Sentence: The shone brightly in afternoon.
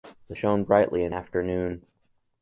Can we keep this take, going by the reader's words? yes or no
yes